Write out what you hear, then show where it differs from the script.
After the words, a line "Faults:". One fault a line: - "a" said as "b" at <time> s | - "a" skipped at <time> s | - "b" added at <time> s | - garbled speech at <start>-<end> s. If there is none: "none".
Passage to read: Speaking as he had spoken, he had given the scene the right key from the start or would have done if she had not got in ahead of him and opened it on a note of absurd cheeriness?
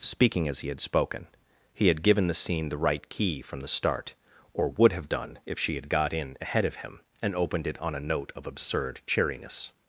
Speaking as he had spoken, he had given the scene the right key from the start or would have done if she had got in ahead of him and opened it on a note of absurd cheeriness?
Faults:
- "not" skipped at 5.9 s